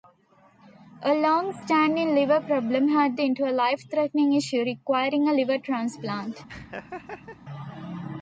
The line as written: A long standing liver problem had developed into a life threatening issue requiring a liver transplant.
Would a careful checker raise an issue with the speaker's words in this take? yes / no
yes